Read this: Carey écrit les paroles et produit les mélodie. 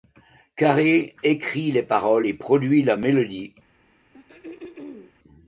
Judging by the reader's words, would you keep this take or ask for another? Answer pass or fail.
fail